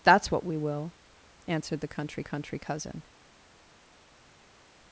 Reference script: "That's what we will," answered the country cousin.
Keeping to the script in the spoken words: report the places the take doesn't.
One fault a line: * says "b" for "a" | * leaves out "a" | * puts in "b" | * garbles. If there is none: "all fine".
* puts in "country"